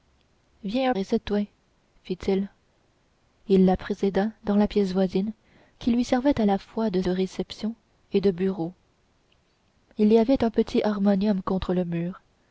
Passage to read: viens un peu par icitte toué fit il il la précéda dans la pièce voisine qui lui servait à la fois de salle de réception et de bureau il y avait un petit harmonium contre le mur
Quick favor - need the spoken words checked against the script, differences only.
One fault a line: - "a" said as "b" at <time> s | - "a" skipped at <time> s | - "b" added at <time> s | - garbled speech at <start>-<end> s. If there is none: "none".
- "peu par" skipped at 0.9 s
- "salle" skipped at 7.0 s